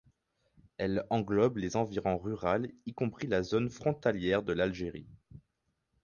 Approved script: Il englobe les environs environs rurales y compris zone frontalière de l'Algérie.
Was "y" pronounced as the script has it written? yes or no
yes